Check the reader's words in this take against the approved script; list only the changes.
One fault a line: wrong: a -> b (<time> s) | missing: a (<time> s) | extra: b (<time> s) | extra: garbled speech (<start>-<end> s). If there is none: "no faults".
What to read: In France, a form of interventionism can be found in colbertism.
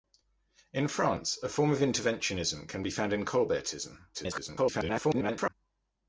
extra: garbled speech (4.1-5.5 s)